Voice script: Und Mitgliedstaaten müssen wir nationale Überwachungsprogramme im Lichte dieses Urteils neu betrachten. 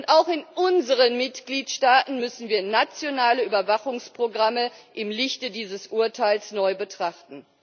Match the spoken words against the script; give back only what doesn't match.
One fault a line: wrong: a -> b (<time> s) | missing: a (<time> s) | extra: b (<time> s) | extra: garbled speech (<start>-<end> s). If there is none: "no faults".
extra: auch in unseren (0.1 s)